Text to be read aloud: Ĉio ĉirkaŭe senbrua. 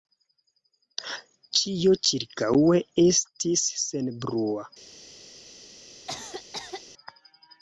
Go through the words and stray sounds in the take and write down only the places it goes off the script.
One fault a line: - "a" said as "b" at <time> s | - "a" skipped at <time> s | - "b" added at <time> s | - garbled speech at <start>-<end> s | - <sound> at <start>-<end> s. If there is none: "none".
- "estis" added at 3.1 s
- cough at 6.1-6.8 s